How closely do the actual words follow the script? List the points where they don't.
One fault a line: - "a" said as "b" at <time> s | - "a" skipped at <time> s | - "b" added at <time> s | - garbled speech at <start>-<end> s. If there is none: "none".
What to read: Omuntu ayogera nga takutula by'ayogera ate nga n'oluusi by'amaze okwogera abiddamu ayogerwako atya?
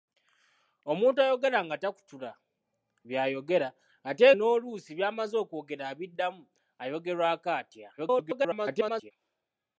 - "nga" skipped at 4.2 s
- garbled speech at 8.0-9.1 s